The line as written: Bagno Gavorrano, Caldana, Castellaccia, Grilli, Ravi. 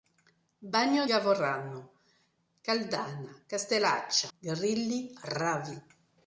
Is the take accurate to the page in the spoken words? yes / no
yes